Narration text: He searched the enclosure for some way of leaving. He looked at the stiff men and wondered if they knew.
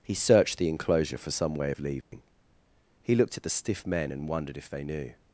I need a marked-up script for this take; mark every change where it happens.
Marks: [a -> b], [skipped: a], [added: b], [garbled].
He searched the enclosure for some way of leaving. He looked at the stiff men and wondered if they knew.